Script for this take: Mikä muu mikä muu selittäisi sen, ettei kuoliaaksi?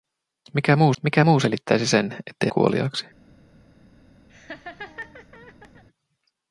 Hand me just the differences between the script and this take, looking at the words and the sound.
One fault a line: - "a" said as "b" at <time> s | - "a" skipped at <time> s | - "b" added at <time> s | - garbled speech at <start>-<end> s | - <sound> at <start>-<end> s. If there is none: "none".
- laugh at 4.3-5.8 s